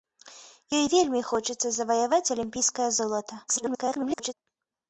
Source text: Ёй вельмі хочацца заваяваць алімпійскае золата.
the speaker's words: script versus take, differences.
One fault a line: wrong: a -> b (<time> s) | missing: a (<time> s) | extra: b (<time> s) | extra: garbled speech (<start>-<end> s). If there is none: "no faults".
extra: garbled speech (3.5-4.3 s)